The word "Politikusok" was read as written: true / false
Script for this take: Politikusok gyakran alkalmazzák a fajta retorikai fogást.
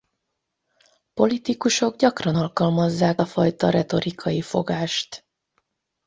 true